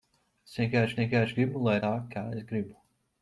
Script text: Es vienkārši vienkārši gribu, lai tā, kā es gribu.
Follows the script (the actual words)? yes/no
yes